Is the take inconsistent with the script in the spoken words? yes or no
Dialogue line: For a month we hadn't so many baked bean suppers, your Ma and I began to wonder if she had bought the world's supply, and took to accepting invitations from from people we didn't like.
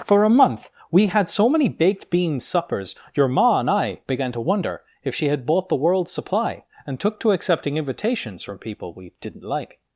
yes